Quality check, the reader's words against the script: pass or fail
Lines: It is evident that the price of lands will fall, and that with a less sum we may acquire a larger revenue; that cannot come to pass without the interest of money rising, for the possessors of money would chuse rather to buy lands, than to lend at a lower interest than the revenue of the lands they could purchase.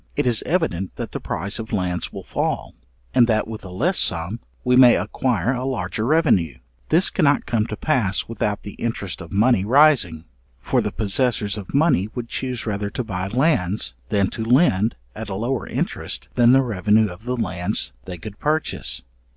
fail